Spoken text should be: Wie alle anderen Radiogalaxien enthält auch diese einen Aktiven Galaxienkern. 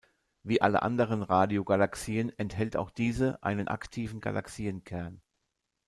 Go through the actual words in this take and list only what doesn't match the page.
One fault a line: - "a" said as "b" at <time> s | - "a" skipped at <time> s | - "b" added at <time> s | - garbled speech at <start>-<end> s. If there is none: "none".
none